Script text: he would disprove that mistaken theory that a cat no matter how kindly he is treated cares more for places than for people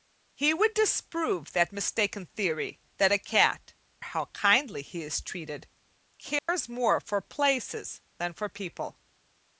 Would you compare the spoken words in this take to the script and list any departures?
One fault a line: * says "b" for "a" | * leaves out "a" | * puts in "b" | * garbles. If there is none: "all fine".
* leaves out "no matter"